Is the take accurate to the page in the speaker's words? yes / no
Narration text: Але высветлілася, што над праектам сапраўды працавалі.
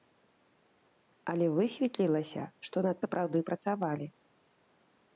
no